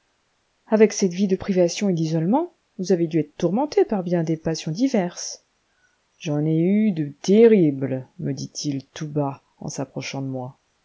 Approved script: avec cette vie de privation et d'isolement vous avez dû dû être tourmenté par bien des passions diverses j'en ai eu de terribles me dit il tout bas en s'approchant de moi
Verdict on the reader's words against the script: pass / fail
fail